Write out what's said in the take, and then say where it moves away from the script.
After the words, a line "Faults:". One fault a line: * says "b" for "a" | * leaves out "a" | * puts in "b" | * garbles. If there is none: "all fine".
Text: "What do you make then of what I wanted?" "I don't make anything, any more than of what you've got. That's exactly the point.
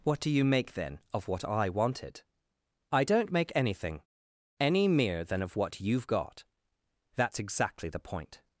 "What do you make then of what I wanted?" "I don't make anything, any mere than of what you've got. That's exactly the point.
Faults:
* says "mere" for "more"